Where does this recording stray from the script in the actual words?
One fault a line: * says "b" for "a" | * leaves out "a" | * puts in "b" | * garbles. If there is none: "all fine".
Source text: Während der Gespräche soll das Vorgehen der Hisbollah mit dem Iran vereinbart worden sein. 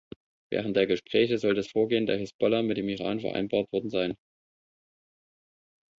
all fine